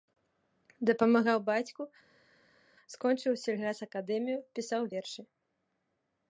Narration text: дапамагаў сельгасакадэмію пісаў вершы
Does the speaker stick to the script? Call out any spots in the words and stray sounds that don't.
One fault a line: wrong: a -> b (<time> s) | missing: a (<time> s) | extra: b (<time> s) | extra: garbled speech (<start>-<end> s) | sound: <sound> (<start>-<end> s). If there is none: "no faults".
extra: бацьку скончыў (1.5 s)